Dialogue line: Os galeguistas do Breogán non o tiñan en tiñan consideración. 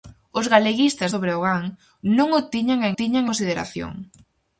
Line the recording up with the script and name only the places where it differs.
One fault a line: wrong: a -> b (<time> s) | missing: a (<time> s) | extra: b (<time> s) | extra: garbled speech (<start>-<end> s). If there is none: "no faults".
no faults